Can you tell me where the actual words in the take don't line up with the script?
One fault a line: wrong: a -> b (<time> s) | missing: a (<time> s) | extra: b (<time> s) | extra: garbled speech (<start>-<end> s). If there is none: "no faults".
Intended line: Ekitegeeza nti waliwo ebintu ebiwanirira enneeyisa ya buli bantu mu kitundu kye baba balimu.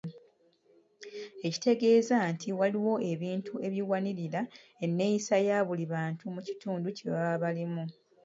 no faults